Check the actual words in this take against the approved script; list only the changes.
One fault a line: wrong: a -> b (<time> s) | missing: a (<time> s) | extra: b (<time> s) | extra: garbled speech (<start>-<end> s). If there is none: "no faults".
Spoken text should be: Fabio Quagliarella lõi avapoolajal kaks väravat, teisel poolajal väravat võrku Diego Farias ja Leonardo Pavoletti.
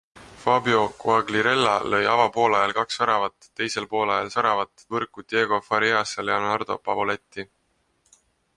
no faults